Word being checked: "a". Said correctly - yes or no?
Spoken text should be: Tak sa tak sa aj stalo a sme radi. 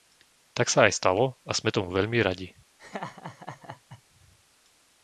yes